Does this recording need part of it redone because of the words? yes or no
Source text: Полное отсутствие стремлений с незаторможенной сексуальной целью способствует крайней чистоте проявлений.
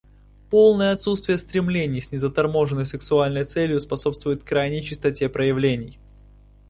no